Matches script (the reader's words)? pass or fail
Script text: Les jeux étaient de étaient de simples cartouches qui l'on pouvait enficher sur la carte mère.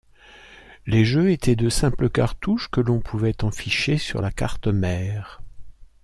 fail